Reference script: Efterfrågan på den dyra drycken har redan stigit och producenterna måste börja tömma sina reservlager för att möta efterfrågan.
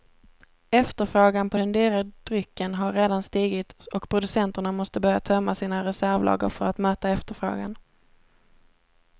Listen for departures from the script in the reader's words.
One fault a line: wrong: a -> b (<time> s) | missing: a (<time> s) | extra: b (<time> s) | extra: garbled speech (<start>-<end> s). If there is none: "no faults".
no faults